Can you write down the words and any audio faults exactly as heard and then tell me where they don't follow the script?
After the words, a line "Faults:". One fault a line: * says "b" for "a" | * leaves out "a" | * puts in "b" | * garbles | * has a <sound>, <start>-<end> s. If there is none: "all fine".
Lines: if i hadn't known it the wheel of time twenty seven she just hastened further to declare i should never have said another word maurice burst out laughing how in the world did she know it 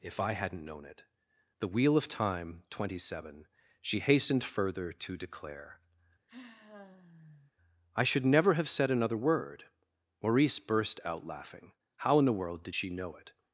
if i hadn't known it the wheel of time twenty seven she hastened further to declare i should never have said another word maurice burst out laughing how in the world did she know it
Faults:
* leaves out "just"
* has a sigh, 6.3-7.5 s